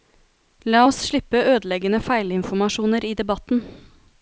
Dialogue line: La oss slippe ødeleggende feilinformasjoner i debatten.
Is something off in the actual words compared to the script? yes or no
no